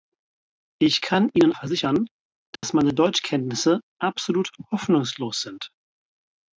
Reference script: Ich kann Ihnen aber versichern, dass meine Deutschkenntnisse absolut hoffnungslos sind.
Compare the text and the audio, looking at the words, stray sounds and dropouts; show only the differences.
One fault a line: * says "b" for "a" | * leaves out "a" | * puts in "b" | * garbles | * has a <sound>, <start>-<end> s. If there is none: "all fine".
* leaves out "aber"
* has a dropout, 2.6-2.6 s